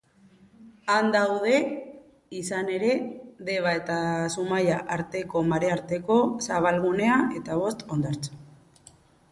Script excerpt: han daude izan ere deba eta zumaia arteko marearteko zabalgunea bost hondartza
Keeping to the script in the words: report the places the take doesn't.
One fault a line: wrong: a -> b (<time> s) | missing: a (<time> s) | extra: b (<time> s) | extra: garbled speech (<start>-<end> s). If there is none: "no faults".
extra: eta (7.4 s)